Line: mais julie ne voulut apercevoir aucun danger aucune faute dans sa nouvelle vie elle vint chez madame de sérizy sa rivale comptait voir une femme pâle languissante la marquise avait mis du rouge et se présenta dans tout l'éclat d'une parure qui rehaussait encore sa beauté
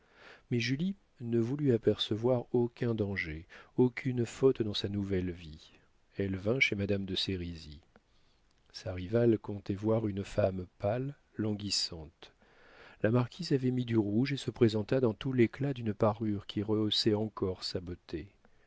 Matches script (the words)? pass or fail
pass